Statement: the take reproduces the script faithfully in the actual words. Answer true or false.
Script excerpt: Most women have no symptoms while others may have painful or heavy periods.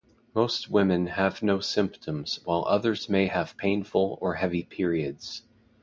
true